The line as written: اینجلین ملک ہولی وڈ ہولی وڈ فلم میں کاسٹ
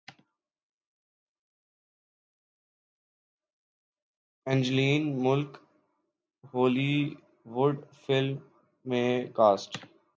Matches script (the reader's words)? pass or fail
fail